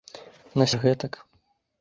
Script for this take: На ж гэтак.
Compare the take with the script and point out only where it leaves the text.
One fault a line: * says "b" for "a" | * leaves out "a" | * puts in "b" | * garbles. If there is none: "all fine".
all fine